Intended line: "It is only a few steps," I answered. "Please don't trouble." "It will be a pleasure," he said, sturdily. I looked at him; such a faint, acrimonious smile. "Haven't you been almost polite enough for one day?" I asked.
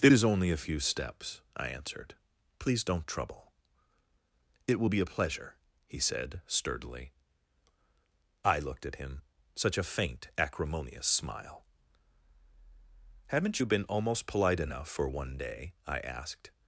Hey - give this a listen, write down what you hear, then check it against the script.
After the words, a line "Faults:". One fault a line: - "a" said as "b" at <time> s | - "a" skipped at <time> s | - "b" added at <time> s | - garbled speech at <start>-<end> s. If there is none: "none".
"It is only a few steps," I answered. "Please don't trouble." "It will be a pleasure," he said, sturdily. I looked at him; such a faint, acrimonious smile. "Haven't you been almost polite enough for one day?" I asked.
Faults:
none